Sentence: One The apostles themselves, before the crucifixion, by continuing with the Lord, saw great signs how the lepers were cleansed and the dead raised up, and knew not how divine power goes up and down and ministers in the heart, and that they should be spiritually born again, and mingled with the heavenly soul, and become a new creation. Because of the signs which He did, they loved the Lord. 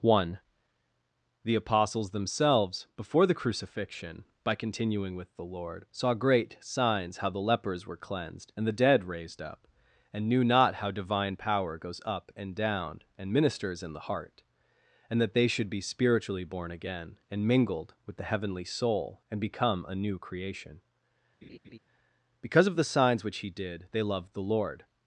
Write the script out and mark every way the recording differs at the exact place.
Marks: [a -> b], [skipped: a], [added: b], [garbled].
One The apostles themselves, before the crucifixion, by continuing with the Lord, saw great signs how the lepers were cleansed and the dead raised up, and knew not how divine power goes up and down and ministers in the heart, and that they should be spiritually born again, and mingled with the heavenly soul, and become a new creation. Because of the signs which He did, they loved the Lord.